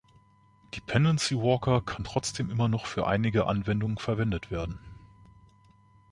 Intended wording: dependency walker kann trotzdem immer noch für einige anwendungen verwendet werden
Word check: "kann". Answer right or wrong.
right